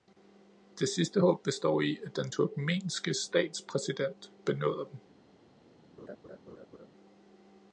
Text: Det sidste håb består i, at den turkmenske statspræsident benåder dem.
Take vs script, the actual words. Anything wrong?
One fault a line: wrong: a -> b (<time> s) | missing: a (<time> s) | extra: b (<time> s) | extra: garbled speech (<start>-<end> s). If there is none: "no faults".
no faults